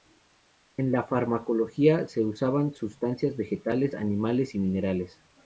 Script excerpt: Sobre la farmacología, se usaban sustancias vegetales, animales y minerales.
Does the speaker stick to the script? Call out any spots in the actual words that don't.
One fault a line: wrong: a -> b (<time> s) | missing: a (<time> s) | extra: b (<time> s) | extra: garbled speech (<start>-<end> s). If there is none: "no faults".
wrong: Sobre -> En (0.8 s)